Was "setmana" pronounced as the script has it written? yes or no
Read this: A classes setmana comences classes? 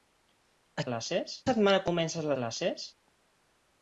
yes